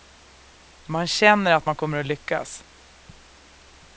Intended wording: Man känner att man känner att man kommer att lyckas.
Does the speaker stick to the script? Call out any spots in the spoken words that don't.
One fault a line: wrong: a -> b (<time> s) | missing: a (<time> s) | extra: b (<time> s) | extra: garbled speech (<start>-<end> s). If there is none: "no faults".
missing: känner att man (1.7 s)